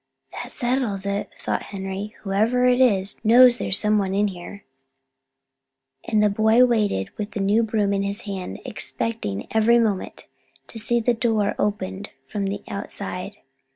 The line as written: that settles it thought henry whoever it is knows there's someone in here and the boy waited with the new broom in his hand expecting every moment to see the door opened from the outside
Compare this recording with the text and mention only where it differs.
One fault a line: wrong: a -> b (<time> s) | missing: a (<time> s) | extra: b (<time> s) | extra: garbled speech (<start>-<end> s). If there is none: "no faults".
no faults